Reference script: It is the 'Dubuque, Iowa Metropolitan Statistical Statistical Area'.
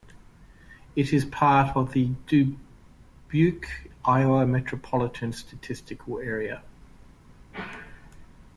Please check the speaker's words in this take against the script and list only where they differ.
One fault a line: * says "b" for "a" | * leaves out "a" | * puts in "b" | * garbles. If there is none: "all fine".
* puts in "part of"
* leaves out "Statistical"